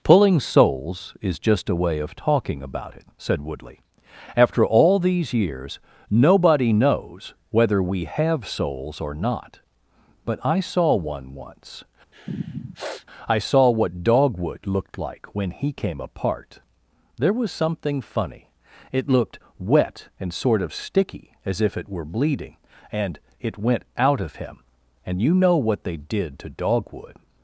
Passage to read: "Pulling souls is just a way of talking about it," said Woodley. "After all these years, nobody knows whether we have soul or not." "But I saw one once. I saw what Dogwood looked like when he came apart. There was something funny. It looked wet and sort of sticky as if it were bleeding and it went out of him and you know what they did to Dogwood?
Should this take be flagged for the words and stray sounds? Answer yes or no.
yes